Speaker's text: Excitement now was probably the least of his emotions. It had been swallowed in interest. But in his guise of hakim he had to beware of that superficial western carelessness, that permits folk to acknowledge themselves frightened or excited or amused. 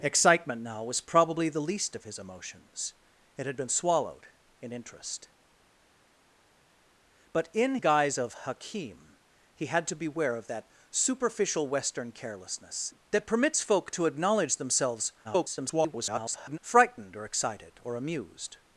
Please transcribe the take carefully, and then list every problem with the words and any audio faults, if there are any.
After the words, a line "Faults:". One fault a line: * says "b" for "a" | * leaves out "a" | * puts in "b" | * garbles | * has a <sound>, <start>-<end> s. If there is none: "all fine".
Excitement now was probably the least of his emotions. It had been swallowed in interest. But in guise of hakim he had to beware of that superficial western carelessness, that permits folk to acknowledge themselves [garbled] frightened or excited or amused.
Faults:
* leaves out "his"
* garbles